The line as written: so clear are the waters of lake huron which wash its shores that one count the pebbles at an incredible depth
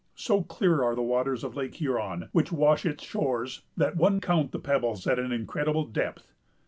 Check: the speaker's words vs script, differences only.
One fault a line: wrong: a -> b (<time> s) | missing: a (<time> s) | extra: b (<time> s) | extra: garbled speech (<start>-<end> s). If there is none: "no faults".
no faults